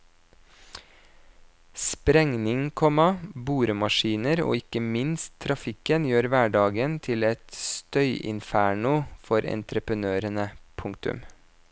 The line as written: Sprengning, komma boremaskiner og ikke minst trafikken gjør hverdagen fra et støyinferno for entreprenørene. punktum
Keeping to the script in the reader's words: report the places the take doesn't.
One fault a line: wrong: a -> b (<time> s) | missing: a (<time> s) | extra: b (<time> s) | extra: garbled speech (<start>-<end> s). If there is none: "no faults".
wrong: fra -> til (7.1 s)